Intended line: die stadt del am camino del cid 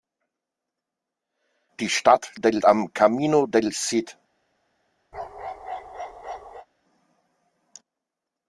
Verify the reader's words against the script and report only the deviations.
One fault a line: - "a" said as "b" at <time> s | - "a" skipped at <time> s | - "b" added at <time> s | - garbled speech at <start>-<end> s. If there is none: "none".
none